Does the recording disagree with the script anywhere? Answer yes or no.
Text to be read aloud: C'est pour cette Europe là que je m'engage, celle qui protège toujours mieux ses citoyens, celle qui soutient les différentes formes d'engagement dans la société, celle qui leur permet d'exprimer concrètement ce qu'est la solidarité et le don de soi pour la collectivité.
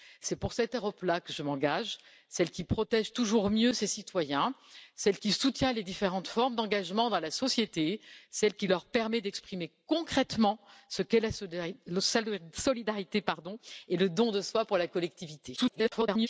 yes